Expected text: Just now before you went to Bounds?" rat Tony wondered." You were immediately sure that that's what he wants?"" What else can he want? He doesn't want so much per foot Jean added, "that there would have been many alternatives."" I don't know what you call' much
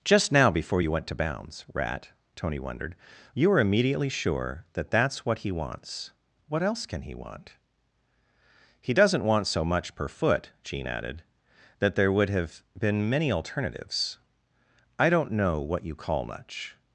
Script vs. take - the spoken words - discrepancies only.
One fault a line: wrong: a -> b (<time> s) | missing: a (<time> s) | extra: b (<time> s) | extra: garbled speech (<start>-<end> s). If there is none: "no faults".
no faults